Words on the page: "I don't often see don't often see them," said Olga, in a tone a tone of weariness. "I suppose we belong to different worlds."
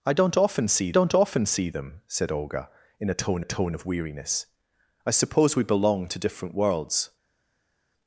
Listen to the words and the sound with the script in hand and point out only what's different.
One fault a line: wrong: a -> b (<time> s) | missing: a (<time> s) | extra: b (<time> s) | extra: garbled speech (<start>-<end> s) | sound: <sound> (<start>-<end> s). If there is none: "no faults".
no faults